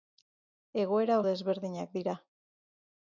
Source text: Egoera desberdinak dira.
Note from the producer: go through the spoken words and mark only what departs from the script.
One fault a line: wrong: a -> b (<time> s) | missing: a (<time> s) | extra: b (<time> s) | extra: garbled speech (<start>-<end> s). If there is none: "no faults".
no faults